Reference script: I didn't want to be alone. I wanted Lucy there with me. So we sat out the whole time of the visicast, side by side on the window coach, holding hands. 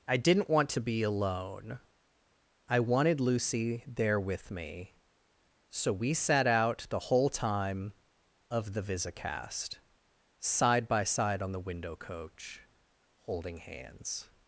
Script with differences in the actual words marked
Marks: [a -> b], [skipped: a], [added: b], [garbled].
I didn't want to be alone. I wanted Lucy there with me. So we sat out the whole time of the visicast, side by side on the window coach, holding hands.